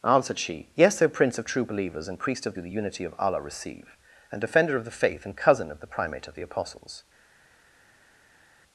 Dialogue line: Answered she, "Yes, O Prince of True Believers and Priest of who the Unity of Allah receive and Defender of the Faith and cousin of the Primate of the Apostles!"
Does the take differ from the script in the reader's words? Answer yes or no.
no